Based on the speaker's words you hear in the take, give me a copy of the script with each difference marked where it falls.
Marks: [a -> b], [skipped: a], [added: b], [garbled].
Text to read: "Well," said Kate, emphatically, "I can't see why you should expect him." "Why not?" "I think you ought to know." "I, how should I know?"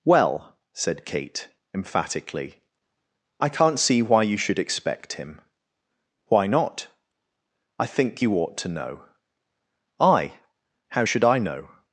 "Well," said Kate, emphatically, "I can't see why you should expect him." "Why not?" "I think you ought to know." "I, how should I know?"